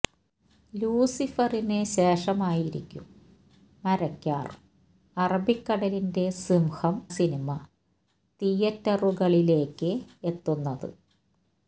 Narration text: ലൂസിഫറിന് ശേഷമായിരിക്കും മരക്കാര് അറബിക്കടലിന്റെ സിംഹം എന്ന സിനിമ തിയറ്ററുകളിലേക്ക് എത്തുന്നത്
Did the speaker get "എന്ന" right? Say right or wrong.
wrong